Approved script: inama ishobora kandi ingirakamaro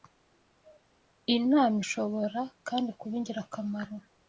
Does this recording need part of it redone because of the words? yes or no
yes